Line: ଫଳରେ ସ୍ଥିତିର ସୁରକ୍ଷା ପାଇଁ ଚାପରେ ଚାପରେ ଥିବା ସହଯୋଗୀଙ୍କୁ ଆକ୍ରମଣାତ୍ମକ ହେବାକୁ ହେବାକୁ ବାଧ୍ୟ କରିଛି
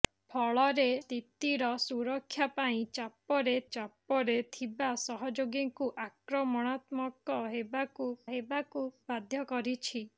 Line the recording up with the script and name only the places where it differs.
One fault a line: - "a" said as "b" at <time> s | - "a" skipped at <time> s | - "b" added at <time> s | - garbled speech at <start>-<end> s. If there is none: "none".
none